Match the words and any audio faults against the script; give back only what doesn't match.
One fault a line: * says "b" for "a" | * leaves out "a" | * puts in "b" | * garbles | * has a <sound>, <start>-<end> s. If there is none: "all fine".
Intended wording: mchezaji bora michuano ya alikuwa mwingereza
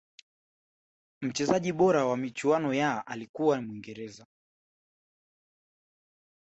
* puts in "wa"